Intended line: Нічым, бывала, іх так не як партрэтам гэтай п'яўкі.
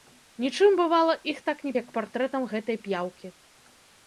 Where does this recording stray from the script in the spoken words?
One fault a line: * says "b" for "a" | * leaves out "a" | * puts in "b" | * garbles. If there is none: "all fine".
all fine